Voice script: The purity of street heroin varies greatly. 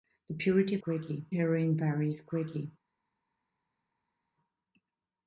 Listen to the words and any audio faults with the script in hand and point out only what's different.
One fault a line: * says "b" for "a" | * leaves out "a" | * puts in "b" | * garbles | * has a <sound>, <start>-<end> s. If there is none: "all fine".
* says "greatly" for "street"